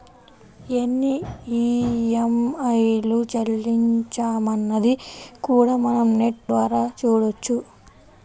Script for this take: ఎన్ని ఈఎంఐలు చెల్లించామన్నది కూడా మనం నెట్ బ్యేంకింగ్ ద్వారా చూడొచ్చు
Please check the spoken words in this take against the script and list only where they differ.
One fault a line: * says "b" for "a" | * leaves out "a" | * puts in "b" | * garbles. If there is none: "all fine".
* leaves out "బ్యేంకింగ్"